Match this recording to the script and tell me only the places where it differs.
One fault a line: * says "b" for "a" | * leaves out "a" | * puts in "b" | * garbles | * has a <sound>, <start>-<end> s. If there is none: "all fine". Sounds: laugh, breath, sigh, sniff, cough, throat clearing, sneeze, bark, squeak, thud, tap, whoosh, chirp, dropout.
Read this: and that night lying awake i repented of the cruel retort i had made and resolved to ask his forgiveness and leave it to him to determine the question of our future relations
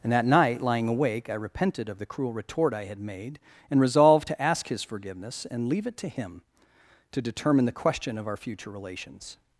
all fine